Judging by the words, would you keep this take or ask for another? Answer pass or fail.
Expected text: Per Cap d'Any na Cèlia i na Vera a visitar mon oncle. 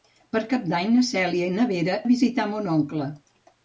pass